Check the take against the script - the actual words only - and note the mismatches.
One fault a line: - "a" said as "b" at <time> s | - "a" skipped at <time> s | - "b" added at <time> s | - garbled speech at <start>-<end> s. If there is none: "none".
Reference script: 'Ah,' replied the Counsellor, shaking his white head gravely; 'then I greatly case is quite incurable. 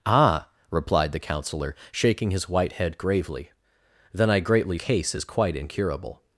none